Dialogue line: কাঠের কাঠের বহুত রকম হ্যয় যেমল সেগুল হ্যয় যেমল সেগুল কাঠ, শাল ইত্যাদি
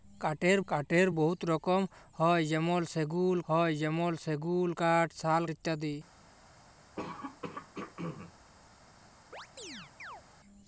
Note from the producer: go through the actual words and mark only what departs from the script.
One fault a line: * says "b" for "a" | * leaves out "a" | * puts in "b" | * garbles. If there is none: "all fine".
all fine